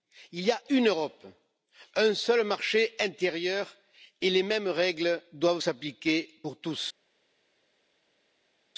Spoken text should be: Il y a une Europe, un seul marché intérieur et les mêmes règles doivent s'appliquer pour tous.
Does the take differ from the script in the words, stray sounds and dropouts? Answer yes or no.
no